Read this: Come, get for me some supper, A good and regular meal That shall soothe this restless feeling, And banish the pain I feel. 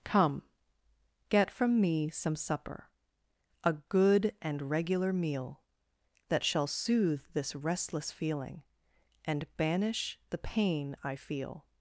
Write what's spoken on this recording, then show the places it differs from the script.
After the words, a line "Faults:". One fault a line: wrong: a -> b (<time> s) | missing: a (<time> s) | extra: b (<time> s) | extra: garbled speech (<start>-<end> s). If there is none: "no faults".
Come, get from me some supper, A good and regular meal That shall soothe this restless feeling, And banish the pain I feel.
Faults:
wrong: for -> from (1.5 s)